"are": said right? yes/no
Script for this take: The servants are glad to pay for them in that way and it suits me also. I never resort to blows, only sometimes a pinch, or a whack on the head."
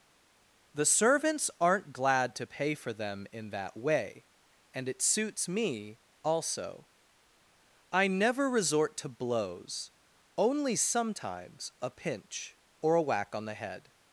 no